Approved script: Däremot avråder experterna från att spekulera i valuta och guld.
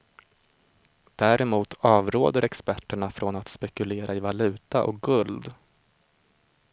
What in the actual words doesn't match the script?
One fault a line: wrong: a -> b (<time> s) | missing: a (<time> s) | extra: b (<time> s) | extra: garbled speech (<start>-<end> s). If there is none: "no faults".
no faults